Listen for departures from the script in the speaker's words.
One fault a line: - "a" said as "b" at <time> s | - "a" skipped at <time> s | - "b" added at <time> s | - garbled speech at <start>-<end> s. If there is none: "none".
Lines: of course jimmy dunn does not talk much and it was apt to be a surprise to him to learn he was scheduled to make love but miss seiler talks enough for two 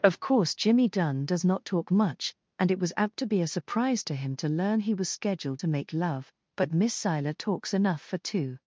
none